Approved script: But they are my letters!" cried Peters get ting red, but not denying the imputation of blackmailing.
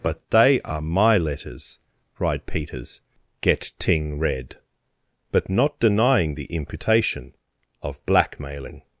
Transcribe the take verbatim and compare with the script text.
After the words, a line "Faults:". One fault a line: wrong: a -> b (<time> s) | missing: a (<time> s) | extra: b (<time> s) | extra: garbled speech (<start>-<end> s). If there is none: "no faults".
But they are my letters!" cried Peters get ting red, but not denying the imputation of blackmailing.
Faults:
no faults